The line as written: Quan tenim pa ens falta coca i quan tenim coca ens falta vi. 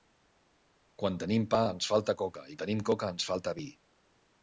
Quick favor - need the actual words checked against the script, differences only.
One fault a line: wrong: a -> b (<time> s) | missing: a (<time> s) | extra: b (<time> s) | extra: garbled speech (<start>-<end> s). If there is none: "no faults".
missing: quan (2.6 s)